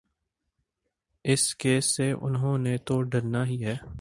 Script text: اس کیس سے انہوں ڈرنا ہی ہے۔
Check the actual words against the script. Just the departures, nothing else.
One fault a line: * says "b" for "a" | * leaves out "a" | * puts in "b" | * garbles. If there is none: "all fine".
* puts in "نے تو"